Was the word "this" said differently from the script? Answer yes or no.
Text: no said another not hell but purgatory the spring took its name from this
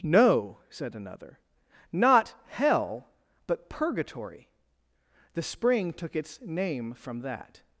yes